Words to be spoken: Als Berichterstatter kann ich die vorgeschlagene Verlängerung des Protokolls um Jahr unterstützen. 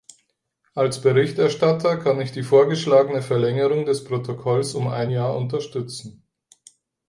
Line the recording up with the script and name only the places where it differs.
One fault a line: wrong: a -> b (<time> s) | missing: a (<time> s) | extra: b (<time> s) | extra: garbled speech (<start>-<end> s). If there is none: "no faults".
extra: ein (4.9 s)